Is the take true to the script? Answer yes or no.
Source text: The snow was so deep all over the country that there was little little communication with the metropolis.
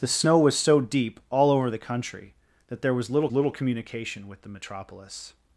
yes